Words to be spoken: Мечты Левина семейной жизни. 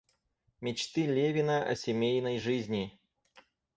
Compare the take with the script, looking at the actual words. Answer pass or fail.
fail